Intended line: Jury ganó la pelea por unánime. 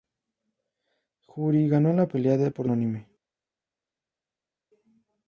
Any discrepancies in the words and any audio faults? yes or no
no